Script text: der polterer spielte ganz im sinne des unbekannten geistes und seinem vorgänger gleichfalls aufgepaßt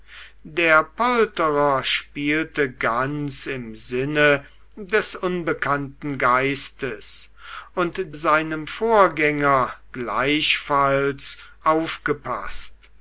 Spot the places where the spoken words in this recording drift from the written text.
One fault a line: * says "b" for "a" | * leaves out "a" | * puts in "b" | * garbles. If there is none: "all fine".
all fine